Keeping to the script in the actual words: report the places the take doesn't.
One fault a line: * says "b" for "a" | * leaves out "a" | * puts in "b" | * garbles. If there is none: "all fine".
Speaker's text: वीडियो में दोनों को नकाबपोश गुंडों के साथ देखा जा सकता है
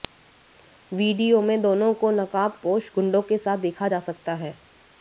all fine